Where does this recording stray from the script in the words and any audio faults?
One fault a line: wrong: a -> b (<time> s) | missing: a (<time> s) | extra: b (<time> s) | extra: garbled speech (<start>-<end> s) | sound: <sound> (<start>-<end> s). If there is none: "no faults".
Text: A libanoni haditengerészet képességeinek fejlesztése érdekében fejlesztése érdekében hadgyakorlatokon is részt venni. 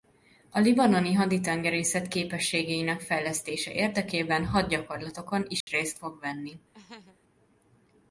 missing: fejlesztése érdekében (4.5 s)
sound: dropout (5.6-5.7 s)
extra: fog (6.0 s)
sound: laugh (6.7-7.2 s)